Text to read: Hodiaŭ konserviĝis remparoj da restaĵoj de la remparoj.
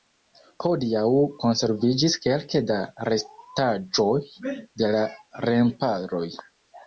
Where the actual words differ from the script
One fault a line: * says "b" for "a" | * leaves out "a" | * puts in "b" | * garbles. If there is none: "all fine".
* says "kelke" for "remparoj"